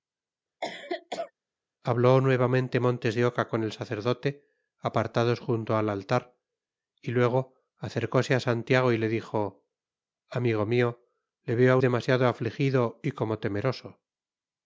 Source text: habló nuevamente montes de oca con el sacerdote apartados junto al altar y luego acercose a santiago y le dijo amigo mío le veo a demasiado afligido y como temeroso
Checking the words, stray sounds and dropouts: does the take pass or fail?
fail